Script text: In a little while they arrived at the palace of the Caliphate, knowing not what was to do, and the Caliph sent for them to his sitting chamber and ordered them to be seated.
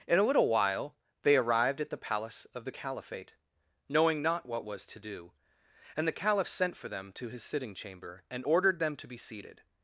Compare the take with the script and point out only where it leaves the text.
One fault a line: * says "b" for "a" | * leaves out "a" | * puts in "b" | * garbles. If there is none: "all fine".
all fine